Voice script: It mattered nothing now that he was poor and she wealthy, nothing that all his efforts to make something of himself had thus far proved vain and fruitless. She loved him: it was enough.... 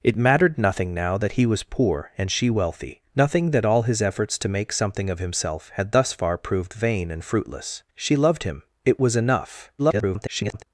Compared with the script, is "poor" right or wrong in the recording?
right